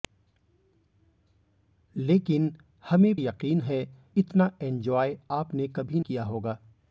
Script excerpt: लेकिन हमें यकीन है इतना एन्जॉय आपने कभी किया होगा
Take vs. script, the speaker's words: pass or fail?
pass